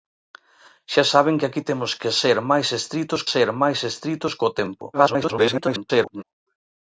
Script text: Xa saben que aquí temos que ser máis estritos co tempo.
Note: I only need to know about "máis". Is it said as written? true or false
true